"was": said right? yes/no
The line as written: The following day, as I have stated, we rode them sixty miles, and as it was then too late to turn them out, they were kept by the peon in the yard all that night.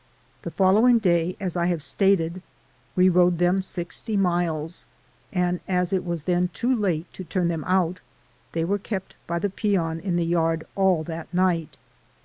yes